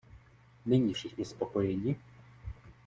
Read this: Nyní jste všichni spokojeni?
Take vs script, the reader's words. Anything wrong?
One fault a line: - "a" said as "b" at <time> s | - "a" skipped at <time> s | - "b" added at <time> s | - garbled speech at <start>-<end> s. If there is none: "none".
- "jste" skipped at 0.9 s